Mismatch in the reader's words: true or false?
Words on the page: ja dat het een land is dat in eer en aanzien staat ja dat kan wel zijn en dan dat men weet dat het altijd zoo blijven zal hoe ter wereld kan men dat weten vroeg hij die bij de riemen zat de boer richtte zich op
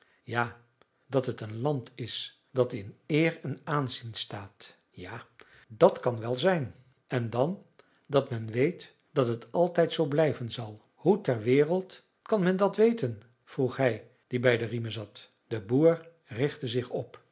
false